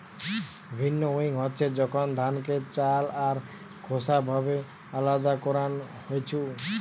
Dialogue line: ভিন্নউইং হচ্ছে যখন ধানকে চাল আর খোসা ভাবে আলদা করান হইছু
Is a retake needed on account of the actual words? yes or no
no